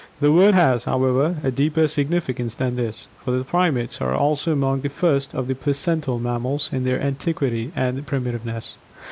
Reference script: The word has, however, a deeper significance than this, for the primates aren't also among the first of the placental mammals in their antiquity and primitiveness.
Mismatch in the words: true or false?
true